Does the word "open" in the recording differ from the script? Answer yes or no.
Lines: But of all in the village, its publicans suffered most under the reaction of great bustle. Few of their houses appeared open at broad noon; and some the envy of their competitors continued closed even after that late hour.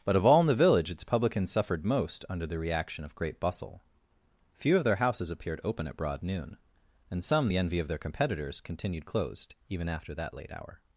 no